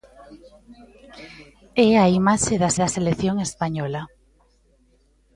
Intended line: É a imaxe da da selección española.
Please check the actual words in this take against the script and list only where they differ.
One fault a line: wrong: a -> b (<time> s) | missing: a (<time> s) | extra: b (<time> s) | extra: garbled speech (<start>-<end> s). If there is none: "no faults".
no faults